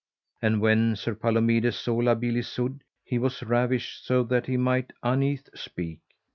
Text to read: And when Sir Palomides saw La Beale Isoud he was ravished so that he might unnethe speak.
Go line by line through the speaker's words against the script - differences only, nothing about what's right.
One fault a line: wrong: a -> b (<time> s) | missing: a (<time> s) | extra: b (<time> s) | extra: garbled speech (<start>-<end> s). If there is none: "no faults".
no faults